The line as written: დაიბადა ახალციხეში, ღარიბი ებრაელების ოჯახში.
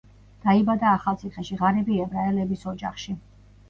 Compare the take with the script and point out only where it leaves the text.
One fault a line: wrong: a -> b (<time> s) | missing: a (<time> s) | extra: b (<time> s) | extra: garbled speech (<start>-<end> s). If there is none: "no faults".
no faults